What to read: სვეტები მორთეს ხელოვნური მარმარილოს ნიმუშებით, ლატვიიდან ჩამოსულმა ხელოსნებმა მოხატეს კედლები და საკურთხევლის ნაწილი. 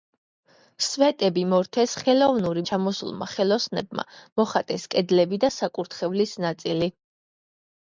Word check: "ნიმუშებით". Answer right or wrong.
wrong